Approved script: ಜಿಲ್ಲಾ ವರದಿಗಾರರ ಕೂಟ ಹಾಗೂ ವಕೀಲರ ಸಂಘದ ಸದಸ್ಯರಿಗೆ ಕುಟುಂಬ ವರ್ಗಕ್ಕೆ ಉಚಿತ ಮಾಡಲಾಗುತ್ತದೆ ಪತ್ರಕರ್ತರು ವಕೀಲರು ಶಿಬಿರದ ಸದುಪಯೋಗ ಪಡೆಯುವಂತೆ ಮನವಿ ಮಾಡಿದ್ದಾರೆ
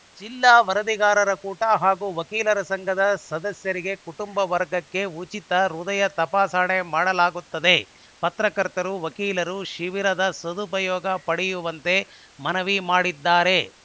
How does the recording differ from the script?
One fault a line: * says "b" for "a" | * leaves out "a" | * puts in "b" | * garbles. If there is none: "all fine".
* puts in "ಹೃದಯ ತಪಾಸಣೆ"